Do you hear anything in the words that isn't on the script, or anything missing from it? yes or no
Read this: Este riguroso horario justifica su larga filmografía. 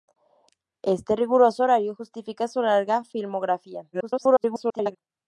yes